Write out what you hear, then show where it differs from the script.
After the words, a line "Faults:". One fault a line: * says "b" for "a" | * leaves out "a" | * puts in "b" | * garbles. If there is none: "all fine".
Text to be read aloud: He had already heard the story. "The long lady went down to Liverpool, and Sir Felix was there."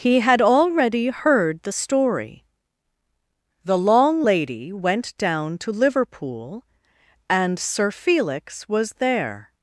He had already heard the story. "The long lady went down to Liverpool, and Sir Felix was there."
Faults:
all fine